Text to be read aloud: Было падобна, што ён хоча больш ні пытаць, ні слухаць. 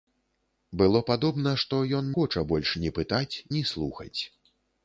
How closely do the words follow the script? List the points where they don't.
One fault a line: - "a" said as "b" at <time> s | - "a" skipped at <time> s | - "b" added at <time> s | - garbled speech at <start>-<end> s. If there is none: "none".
none